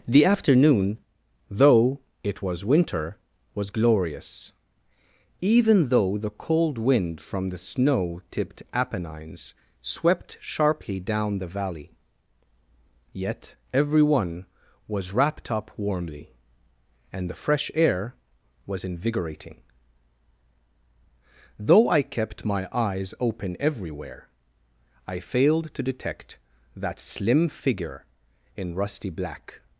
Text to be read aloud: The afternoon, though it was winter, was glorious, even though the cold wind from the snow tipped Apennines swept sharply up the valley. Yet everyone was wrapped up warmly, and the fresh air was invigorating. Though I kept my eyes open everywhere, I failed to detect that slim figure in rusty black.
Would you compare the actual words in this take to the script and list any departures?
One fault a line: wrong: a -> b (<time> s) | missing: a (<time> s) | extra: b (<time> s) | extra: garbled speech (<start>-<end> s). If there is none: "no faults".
wrong: up -> down (11.0 s)